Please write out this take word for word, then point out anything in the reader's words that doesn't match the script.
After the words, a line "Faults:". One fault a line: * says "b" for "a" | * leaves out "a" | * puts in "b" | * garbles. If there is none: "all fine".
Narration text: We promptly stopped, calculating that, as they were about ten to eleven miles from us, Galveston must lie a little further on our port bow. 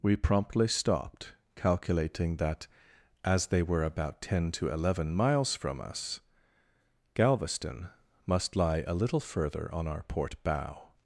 We promptly stopped, calculating that, as they were about ten to eleven miles from us, Galveston must lie a little further on our port bow.
Faults:
all fine